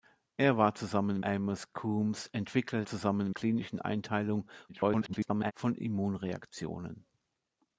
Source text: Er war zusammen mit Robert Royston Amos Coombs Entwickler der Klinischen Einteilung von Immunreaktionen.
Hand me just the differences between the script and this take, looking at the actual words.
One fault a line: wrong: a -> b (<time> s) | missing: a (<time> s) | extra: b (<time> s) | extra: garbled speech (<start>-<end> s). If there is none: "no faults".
missing: mit Robert Royston (1.2 s)
wrong: der -> zusammen (2.8 s)
extra: garbled speech (4.7-5.5 s)